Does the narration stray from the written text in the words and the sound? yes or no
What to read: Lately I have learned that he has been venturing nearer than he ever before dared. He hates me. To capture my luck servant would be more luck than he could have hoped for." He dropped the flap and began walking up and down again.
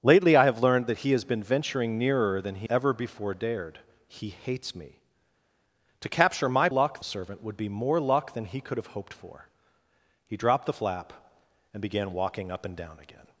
no